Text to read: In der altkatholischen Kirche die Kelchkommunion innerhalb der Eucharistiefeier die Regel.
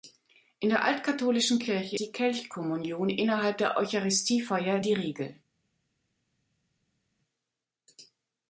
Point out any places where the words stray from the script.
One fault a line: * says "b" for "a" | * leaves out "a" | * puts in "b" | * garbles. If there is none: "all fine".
all fine